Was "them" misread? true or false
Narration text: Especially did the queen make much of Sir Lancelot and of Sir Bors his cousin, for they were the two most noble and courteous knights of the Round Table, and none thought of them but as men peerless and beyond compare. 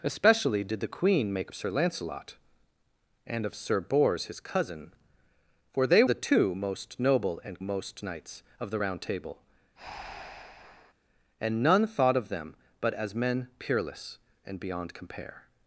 false